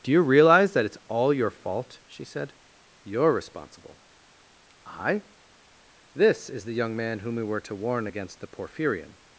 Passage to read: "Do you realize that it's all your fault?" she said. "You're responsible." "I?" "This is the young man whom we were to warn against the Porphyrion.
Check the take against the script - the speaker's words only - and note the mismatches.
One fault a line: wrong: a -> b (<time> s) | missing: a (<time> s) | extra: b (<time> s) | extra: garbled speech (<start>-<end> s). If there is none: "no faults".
no faults